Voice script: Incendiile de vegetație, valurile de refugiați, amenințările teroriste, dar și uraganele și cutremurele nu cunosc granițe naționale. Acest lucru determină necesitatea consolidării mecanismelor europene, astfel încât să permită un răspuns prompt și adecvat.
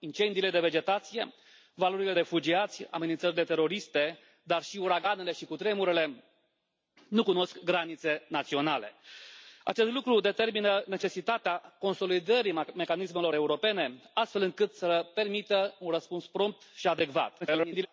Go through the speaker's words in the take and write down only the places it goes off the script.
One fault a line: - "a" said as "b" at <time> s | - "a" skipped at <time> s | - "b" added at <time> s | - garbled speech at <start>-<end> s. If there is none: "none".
- "de" skipped at 2.1 s
- garbled speech at 17.4-17.9 s